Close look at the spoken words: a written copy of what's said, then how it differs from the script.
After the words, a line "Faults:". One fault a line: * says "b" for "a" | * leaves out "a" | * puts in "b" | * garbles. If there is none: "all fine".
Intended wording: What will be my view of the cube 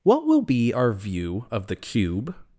What will be our view of the cube
Faults:
* says "our" for "my"